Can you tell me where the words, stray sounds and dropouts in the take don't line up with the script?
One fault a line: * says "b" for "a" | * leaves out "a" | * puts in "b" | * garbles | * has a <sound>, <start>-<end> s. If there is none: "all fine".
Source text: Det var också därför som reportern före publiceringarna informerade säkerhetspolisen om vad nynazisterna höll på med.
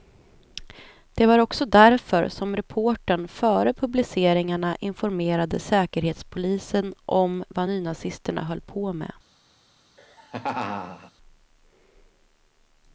* has a laugh, 10.0-11.1 s